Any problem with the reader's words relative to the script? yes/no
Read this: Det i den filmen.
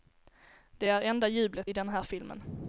yes